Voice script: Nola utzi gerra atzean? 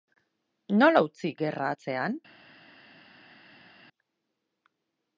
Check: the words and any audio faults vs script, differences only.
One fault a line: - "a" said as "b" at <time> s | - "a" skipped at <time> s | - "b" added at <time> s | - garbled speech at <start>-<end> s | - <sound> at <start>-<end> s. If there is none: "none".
none